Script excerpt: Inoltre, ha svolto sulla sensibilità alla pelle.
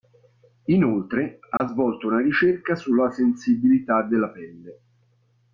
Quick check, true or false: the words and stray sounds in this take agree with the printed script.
false